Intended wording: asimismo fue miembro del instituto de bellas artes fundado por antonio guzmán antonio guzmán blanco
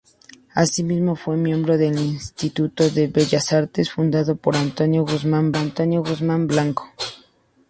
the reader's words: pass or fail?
pass